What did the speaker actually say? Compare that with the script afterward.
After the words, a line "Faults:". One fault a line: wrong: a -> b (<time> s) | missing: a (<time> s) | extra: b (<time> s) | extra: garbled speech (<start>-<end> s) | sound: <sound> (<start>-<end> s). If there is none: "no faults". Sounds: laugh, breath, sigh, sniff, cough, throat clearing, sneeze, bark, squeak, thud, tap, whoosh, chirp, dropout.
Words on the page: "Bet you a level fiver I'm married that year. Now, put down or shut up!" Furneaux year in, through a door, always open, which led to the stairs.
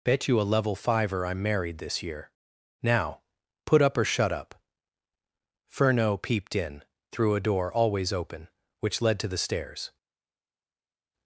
"Bet you a level fiver I'm married this year. Now, put up or shut up!" Furneaux peeped in, through a door, always open, which led to the stairs.
Faults:
wrong: that -> this (1.8 s)
wrong: down -> up (3.8 s)
wrong: year -> peeped (6.2 s)